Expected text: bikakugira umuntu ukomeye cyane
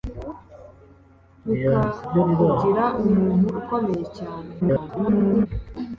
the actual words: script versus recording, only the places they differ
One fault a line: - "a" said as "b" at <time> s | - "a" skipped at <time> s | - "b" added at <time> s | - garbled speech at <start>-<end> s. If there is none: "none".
- garbled speech at 4.6-5.5 s